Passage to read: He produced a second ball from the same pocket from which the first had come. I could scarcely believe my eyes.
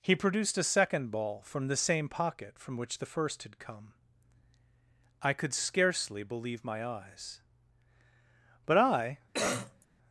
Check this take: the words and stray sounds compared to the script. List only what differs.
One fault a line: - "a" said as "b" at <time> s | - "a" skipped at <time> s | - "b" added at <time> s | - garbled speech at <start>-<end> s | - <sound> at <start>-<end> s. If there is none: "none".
- "But I" added at 8.7 s
- cough at 9.3-9.9 s